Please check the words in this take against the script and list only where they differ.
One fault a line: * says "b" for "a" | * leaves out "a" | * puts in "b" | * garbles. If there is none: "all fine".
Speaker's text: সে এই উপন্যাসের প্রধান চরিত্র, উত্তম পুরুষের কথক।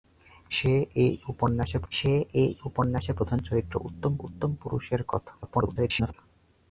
* puts in "সে এই উপন্যাসের"
* puts in "উত্তম"
* garbles